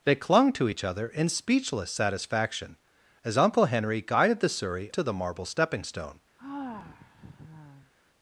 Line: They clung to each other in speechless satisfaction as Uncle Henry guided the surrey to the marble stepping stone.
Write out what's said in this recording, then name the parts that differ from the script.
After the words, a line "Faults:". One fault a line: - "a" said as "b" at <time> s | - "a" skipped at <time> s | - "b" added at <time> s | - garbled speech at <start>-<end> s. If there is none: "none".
They clung to each other in speechless satisfaction as Uncle Henry guided the surrey to the marble stepping stone.
Faults:
none